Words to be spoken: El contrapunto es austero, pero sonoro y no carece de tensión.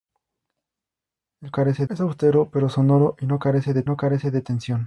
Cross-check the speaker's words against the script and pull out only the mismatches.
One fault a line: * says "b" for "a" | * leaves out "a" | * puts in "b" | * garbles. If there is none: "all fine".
* says "carece" for "contrapunto"
* puts in "no carece de"